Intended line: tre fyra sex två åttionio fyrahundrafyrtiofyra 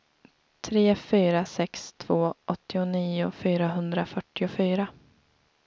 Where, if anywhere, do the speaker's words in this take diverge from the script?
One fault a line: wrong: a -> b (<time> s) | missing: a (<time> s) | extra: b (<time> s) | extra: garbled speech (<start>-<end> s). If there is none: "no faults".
no faults